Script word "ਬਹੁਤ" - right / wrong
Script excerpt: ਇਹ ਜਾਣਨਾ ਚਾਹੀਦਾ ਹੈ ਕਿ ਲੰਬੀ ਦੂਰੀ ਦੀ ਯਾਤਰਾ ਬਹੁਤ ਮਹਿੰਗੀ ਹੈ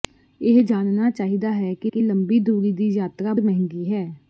wrong